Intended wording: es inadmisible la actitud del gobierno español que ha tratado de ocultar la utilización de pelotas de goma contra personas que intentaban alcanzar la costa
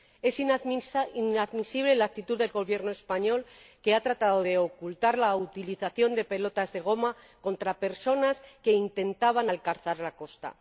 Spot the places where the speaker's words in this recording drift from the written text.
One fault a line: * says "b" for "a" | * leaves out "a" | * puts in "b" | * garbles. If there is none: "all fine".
all fine